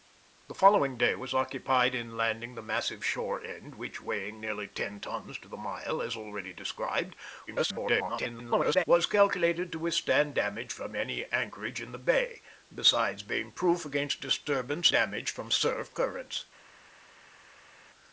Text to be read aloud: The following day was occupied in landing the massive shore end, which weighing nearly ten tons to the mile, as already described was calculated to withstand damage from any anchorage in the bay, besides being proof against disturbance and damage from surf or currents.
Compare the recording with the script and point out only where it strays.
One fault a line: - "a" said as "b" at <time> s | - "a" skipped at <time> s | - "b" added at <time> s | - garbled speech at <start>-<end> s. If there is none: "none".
- garbled speech at 7.5-8.8 s
- "and" skipped at 14.9 s
- "or" skipped at 16.0 s